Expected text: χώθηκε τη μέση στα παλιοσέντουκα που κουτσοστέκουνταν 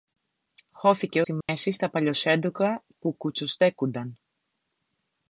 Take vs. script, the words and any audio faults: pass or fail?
fail